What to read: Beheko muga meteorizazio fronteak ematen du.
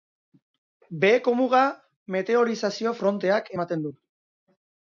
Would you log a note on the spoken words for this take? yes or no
no